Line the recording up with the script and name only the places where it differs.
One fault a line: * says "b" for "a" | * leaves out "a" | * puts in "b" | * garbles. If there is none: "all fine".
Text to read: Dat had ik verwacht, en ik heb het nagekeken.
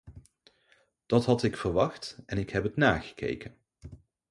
all fine